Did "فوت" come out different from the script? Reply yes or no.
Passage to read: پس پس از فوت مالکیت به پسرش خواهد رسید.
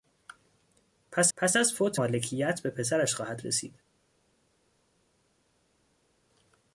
no